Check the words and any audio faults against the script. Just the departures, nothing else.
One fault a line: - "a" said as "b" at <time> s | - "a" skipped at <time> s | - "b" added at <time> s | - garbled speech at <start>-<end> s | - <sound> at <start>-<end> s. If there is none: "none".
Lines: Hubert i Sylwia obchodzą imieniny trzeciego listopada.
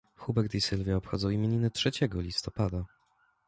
none